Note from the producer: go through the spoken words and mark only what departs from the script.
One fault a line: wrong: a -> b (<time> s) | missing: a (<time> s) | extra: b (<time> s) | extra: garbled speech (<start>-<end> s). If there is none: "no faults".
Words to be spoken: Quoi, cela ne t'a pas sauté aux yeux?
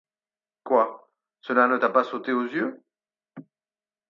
no faults